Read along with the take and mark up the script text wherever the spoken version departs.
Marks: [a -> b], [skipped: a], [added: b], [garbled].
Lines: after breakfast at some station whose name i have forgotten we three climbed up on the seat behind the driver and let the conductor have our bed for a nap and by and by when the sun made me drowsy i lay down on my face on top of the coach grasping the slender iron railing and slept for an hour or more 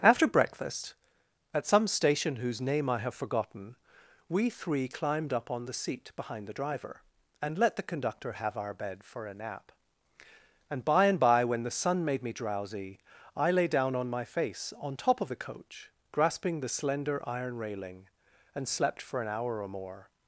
after breakfast at some station whose name i have forgotten we three climbed up on the seat behind the driver and let the conductor have our bed for a nap and by and by when the sun made me drowsy i lay down on my face on top of the coach grasping the slender iron railing and slept for an hour or more